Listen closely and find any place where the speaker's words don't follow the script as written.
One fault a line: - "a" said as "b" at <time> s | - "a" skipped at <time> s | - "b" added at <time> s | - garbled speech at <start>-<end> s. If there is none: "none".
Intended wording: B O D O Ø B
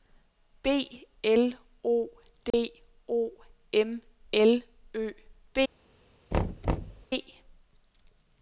- "L" added at 1.2 s
- "M L" added at 3.7 s